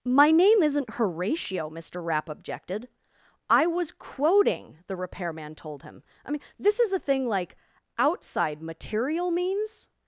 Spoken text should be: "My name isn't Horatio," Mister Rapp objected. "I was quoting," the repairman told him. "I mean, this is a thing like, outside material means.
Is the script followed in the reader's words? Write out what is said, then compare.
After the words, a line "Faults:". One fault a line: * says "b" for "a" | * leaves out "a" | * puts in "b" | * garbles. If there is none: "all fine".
"My name isn't Horatio," Mister Rapp objected. "I was quoting," the repairman told him. "I mean, this is a thing like, outside material means.
Faults:
all fine